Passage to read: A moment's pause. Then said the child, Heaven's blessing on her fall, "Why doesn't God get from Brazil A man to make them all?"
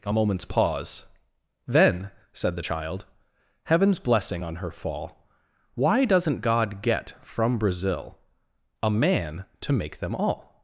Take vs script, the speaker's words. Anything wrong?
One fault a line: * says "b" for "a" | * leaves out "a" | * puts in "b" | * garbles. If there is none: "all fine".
all fine